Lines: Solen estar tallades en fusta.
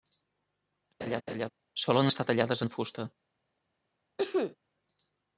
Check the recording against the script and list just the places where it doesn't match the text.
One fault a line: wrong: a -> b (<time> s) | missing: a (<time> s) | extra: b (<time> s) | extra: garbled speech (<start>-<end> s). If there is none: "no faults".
no faults